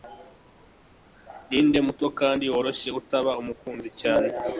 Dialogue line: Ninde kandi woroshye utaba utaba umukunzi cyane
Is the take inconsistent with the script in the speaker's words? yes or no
yes